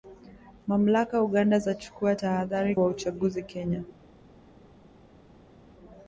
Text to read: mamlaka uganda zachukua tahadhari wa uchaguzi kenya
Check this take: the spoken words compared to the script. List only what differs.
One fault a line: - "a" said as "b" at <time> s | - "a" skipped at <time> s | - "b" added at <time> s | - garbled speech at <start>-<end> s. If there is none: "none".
none